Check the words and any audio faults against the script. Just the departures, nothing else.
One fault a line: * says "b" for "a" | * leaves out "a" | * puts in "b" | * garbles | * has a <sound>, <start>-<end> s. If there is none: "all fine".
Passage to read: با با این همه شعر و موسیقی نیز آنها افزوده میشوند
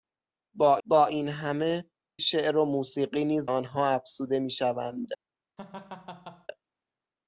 * has a laugh, 5.6-6.5 s